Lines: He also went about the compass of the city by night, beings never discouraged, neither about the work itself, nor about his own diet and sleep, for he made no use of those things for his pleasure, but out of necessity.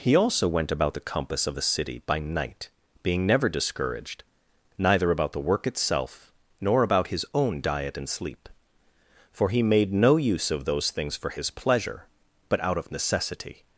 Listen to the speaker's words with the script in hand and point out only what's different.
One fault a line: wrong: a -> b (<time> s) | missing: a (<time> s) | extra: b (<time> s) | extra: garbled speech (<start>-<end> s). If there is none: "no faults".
wrong: beings -> being (3.0 s)